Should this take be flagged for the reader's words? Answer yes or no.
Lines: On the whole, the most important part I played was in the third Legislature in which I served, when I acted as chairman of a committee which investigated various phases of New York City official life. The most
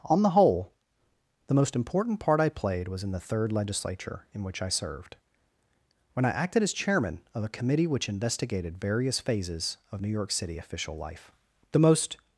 no